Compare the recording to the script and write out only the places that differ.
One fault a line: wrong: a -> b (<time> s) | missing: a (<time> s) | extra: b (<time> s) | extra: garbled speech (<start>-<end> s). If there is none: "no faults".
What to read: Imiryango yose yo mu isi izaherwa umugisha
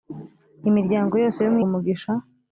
missing: isi izaherwa (1.6 s)